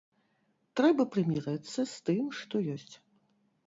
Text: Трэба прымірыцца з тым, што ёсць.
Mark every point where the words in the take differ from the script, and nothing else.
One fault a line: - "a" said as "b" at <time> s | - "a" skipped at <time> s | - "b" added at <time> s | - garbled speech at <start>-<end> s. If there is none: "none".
none